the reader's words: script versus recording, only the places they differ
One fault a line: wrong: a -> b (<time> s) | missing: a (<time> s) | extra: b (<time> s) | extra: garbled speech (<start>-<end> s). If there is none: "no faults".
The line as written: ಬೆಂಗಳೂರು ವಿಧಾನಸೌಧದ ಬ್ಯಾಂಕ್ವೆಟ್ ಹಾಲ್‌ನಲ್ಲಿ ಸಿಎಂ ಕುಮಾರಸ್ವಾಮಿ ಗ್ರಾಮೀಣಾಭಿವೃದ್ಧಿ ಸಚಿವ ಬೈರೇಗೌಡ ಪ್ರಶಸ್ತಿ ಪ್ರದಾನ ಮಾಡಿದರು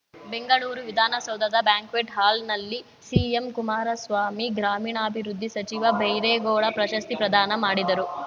no faults